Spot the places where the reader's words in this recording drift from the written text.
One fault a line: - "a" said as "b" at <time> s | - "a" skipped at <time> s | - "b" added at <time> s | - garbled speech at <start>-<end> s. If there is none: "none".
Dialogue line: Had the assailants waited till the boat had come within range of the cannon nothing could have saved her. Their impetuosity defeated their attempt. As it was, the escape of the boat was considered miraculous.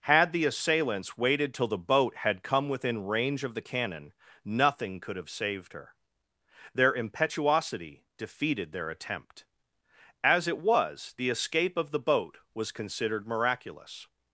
none